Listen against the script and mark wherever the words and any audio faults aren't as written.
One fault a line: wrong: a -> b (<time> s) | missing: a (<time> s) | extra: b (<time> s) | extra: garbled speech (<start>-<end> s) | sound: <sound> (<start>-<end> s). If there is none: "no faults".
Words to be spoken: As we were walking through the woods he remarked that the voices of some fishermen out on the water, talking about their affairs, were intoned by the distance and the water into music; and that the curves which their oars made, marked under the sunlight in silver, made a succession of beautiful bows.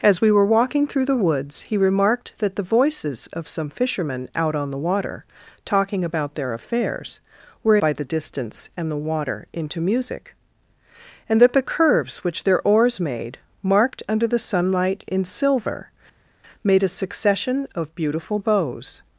missing: intoned (7.8 s)